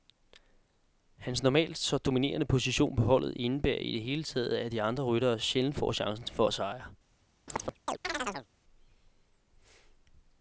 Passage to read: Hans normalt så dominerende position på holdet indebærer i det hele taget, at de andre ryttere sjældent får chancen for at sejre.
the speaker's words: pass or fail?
pass